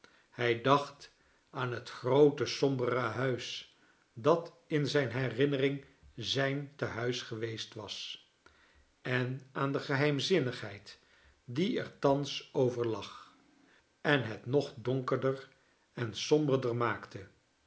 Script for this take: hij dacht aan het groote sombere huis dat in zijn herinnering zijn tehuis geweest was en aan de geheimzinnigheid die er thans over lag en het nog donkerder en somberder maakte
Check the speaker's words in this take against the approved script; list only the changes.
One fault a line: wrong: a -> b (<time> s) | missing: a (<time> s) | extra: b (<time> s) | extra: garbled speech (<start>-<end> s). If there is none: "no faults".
no faults